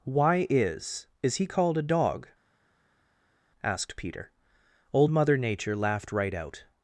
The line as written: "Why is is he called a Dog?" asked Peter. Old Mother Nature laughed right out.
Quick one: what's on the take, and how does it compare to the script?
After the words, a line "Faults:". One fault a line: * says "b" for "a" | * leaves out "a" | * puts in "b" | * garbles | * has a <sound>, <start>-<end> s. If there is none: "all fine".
"Why is is he called a Dog?" asked Peter. Old Mother Nature laughed right out.
Faults:
all fine